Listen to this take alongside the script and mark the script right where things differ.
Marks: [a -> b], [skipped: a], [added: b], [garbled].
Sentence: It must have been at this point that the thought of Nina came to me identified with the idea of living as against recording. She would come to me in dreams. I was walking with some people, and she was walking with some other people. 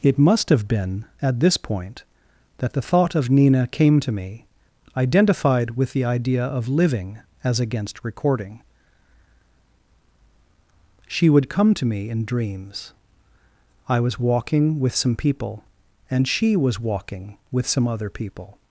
It must have been at this point that the thought of Nina came to me identified with the idea of living as against recording. She would come to me in dreams. I was walking with some people, and she was walking with some other people.